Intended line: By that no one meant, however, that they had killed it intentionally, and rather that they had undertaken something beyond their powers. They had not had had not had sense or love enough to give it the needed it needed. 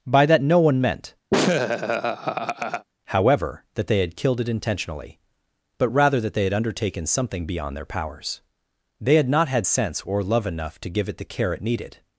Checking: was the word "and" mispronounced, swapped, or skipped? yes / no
yes